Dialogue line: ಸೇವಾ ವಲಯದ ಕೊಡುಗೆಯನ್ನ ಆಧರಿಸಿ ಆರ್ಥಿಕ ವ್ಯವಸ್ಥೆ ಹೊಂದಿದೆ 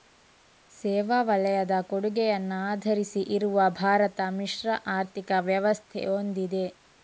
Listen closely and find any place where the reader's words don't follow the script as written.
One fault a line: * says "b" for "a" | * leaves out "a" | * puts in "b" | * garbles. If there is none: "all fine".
* puts in "ಇರುವ ಭಾರತ ಮಿಶ್ರ"